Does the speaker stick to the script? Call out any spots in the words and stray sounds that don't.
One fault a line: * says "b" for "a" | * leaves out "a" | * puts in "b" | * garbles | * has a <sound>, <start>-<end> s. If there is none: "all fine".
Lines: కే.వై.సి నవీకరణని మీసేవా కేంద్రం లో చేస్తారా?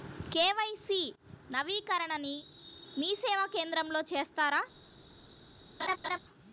* has a laugh, 5.8-6.2 s